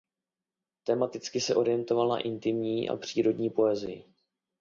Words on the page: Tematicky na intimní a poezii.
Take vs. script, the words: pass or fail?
fail